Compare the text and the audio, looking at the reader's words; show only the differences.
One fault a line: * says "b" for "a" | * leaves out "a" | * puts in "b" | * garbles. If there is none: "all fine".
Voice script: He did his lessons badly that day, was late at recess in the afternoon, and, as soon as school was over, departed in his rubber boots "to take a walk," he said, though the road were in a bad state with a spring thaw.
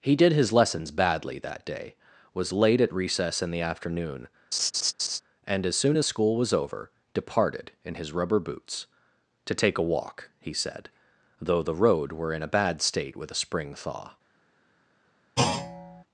all fine